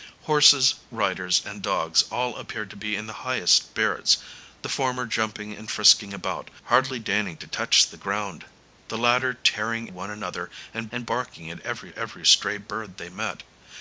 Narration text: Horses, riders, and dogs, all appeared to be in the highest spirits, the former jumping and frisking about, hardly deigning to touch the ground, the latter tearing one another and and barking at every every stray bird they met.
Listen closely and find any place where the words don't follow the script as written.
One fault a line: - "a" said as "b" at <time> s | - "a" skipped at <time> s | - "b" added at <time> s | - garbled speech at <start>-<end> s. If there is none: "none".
none